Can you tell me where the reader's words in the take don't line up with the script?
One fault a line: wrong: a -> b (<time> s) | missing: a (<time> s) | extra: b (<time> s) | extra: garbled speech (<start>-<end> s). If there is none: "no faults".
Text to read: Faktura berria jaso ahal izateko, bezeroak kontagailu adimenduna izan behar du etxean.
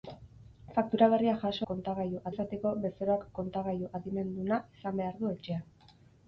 wrong: ahal -> kontagailu (1.7 s)